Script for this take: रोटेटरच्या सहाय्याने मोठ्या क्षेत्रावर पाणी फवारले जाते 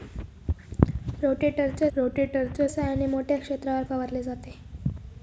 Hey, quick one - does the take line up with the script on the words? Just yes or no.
no